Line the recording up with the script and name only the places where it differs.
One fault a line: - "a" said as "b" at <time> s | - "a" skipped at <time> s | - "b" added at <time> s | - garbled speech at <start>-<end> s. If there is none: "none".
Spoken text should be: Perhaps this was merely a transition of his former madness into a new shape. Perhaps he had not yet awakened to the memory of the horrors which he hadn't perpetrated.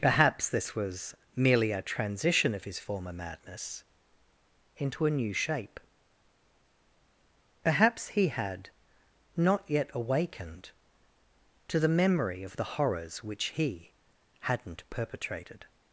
none